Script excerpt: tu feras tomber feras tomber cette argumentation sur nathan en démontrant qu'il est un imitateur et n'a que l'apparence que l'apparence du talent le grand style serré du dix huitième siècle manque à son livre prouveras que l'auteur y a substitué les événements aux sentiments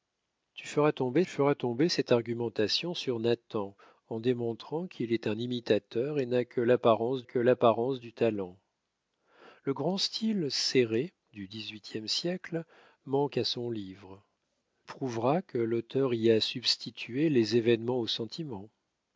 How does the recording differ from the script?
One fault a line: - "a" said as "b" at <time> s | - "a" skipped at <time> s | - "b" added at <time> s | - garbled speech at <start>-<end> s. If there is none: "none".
none